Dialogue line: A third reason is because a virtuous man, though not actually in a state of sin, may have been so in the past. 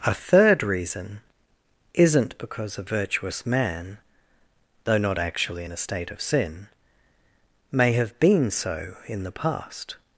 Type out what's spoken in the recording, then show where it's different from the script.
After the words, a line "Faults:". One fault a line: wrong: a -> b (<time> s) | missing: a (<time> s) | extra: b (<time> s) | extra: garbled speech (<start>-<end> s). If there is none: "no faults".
A third reason isn't because a virtuous man, though not actually in a state of sin, may have been so in the past.
Faults:
wrong: is -> isn't (1.9 s)